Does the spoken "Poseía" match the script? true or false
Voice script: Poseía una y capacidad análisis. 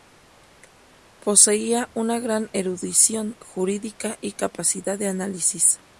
true